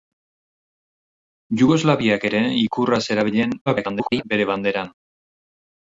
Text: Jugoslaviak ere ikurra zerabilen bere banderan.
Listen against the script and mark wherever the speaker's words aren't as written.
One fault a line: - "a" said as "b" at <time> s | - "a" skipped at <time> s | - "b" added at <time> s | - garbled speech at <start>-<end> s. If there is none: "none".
- garbled speech at 3.7-4.2 s